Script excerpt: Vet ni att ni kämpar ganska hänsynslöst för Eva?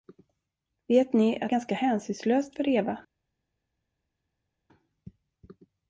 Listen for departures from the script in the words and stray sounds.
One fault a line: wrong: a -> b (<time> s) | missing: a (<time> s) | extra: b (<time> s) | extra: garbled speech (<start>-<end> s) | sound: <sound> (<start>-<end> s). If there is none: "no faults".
missing: ni kämpar (1.5 s)